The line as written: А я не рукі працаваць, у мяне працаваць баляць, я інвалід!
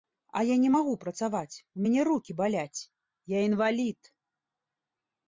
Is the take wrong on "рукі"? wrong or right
wrong